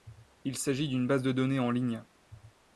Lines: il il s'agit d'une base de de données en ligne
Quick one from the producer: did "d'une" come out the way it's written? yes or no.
yes